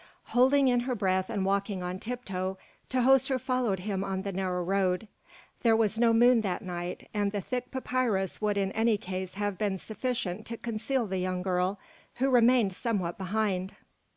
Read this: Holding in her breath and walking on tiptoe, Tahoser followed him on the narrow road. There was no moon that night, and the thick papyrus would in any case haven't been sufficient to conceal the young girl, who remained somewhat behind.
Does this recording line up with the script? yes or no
no